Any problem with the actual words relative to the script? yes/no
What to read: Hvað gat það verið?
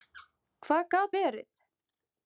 yes